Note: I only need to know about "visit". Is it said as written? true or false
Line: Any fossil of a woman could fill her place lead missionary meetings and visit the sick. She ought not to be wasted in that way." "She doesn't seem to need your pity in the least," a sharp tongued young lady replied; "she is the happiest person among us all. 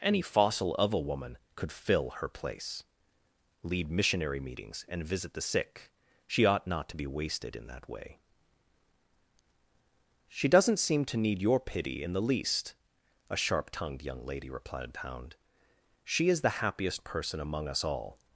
true